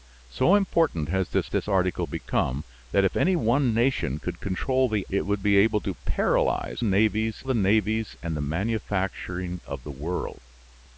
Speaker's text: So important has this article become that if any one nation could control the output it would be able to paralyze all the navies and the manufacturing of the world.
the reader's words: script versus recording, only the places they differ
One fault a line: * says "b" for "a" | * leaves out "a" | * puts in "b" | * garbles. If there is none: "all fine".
* puts in "this"
* leaves out "output"
* says "navies" for "all"